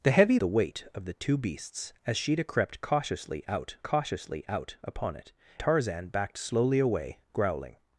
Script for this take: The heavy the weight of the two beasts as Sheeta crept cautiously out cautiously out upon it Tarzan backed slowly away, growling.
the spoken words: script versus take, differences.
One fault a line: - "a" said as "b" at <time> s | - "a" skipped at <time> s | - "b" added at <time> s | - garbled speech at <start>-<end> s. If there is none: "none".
none